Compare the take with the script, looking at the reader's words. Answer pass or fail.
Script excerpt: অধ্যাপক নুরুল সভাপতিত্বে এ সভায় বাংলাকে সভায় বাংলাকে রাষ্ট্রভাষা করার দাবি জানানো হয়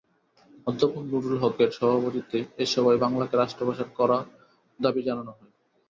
fail